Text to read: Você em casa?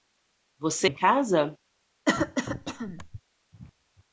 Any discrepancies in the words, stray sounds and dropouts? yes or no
yes